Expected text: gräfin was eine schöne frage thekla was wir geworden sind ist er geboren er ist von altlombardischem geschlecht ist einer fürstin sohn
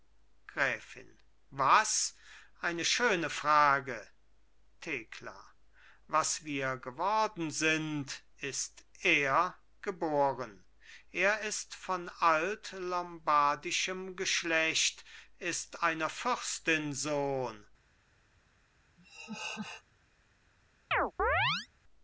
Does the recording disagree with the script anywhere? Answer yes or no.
no